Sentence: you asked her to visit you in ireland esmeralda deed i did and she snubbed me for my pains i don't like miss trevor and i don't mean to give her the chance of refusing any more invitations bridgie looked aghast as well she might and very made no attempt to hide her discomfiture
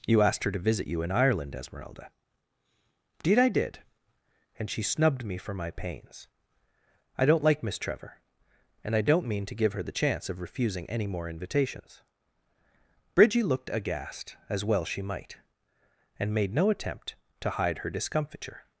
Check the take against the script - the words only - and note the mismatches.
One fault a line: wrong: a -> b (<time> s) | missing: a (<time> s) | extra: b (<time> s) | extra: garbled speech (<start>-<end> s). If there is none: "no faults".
missing: very (16.3 s)